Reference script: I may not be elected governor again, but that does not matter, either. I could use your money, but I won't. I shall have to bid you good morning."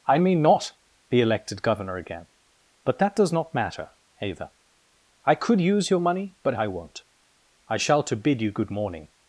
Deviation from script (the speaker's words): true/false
true